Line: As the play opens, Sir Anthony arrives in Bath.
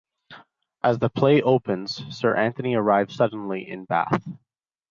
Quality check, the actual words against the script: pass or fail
fail